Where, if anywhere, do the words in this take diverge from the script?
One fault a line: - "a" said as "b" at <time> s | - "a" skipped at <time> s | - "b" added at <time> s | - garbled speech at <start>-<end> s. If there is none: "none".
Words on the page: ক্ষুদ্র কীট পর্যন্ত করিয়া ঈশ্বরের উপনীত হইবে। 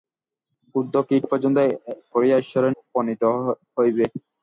none